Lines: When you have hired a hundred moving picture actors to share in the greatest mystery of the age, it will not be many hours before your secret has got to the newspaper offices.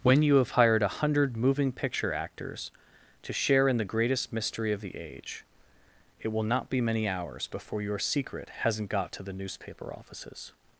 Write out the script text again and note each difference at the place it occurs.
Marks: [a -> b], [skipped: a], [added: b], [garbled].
When you have hired a hundred moving picture actors to share in the greatest mystery of the age, it will not be many hours before your secret [has -> hasn't] got to the newspaper offices.